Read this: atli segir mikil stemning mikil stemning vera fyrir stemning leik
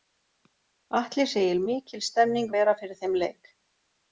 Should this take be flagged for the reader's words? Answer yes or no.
yes